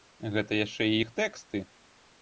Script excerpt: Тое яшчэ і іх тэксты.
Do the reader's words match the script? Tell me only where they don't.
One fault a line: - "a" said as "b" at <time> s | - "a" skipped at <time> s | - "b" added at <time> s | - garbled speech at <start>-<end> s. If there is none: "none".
- "Тое" said as "Гэта" at 0.3 s